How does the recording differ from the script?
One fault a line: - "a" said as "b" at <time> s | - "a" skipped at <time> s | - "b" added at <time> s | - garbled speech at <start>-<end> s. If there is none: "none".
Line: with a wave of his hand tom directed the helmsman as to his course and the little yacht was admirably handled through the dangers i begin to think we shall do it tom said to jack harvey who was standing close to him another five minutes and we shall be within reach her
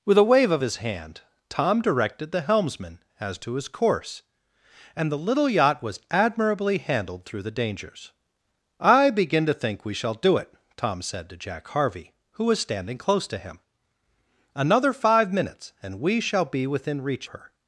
none